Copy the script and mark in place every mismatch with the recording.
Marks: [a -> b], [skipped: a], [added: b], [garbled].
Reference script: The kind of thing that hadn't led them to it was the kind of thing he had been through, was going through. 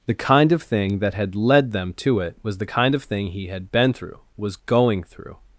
The kind of thing that [hadn't -> had] led them to it was the kind of thing he had been through, was going through.